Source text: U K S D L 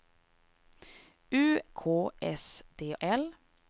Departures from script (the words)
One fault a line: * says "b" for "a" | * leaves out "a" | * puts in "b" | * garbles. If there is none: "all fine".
all fine